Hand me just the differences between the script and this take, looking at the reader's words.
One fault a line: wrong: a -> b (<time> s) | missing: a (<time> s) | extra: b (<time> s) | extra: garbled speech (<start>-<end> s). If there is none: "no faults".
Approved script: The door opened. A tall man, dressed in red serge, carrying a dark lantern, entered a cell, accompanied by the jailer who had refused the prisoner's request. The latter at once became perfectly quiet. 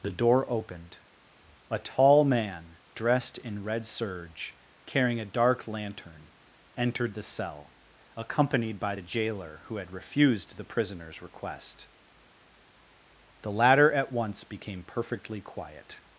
wrong: a -> the (7.1 s)